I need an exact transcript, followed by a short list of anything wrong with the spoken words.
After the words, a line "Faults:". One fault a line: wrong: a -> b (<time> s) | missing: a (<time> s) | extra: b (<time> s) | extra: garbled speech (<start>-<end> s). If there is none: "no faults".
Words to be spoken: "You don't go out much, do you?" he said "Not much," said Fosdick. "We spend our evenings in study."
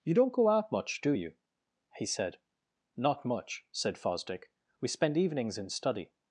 "You don't go out much, do you?" he said "Not much," said Fosdick. "We spend evenings in study."
Faults:
missing: our (5.2 s)